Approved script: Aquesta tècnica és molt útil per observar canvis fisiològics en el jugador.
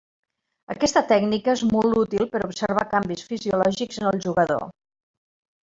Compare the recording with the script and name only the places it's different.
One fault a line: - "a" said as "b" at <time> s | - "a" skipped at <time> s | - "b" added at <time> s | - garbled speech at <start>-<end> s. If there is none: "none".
none